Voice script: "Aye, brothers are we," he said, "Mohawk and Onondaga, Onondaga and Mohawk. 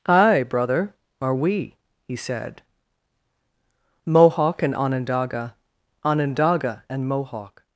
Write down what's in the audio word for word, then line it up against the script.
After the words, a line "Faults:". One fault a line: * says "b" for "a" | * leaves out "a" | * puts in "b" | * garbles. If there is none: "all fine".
"Aye, brother are we," he said, "Mohawk and Onondaga, Onondaga and Mohawk.
Faults:
* says "brother" for "brothers"